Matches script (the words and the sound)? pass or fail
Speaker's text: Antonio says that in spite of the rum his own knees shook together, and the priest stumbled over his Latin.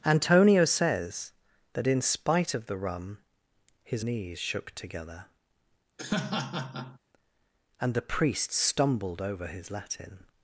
fail